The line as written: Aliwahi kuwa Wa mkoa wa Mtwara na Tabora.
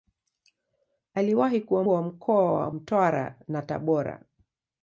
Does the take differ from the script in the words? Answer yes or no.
no